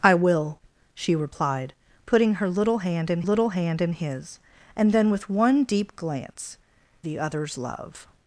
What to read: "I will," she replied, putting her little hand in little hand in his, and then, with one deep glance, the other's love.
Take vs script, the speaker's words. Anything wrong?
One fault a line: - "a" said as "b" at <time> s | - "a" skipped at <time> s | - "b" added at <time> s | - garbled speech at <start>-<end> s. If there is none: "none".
none